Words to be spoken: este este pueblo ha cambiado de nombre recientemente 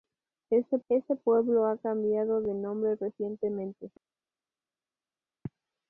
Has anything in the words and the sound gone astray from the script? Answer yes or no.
no